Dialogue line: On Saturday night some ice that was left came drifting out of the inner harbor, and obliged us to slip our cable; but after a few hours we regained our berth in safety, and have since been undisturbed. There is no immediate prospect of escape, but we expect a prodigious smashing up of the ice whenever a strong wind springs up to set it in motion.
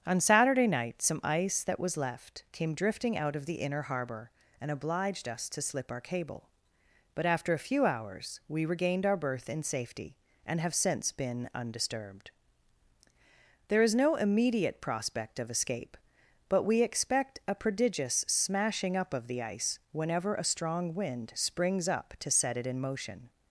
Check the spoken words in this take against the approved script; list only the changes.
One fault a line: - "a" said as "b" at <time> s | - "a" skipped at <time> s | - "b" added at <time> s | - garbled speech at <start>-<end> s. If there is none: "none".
none